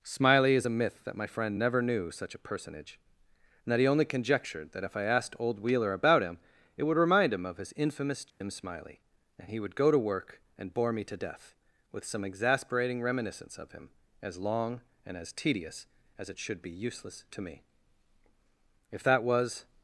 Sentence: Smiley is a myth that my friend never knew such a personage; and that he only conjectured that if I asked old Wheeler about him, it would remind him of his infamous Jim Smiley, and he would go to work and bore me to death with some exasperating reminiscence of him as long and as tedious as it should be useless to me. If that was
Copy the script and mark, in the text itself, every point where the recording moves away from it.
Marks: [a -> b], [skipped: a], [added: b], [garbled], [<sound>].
Smiley is a myth that my friend never knew such a personage; and that he only conjectured that if I asked old Wheeler about him, it would remind him of his infamous Jim [dropout] Smiley, and he would go to work and bore me to death with some exasperating reminiscence of him as long and as tedious as it should be useless to me. If that was